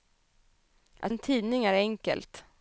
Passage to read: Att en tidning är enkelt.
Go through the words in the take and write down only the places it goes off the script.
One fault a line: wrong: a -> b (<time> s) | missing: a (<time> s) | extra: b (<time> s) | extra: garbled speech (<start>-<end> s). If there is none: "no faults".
no faults